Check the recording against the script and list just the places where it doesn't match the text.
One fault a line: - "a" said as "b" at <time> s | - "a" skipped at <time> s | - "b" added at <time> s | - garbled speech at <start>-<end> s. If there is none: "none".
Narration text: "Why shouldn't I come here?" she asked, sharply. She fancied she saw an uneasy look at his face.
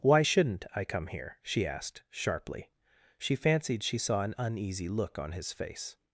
- "at" said as "on" at 5.2 s